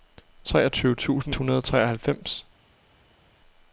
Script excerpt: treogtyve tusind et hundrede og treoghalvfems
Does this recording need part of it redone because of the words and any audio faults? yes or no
yes